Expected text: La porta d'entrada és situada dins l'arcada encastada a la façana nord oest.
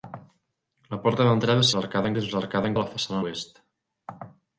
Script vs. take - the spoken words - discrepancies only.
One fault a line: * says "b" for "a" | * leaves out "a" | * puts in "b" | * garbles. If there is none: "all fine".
* says "l'arcada" for "situada"
* leaves out "encastada"
* leaves out "nord"